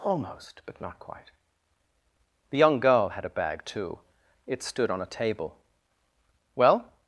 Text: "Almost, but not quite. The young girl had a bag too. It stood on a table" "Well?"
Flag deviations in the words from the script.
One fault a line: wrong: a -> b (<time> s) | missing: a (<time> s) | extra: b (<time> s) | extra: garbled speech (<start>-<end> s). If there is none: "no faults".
no faults